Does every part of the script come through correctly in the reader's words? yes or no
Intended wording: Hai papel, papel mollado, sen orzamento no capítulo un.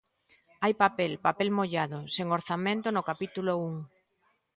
yes